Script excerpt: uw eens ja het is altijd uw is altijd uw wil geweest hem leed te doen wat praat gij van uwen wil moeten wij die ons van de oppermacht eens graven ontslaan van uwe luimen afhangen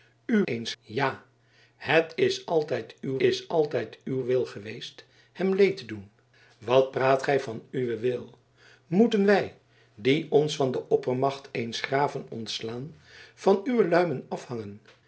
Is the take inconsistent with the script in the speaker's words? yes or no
no